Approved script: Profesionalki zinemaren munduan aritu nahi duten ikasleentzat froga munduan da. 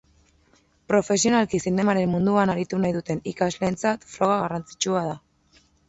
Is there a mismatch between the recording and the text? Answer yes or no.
yes